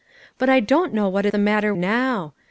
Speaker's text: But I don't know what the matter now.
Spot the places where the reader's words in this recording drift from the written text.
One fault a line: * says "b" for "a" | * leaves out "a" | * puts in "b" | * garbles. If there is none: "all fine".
all fine